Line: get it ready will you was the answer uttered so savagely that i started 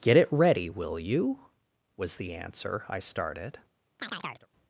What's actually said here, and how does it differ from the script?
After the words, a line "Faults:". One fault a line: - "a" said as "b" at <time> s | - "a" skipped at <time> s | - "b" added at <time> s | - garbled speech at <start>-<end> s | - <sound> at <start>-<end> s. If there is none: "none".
get it ready will you was the answer i started
Faults:
- "uttered so savagely that" skipped at 2.9 s
- chirp at 4.0-4.5 s